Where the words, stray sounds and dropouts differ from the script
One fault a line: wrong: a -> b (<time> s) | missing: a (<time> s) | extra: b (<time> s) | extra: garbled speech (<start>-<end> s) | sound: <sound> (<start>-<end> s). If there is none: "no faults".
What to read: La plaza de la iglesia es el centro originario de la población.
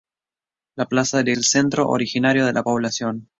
missing: iglesia es (1.3 s)